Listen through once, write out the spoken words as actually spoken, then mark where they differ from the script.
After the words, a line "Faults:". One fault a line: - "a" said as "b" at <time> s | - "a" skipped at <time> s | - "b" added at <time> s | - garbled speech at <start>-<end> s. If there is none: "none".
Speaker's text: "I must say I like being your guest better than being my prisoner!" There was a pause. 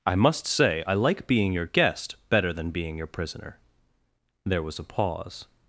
"I must say I like being your guest better than being your prisoner!" There was a pause.
Faults:
- "my" said as "your" at 3.0 s